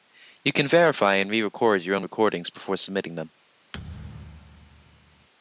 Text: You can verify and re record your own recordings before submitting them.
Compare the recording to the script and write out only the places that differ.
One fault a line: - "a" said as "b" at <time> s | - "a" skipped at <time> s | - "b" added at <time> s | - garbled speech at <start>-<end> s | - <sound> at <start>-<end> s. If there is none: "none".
- thud at 3.7-5.3 s